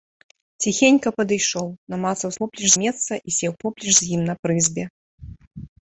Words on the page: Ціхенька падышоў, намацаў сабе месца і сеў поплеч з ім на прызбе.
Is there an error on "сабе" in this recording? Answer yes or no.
yes